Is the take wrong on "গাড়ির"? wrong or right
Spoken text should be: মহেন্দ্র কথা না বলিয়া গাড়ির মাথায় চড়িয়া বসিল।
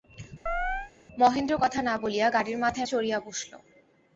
right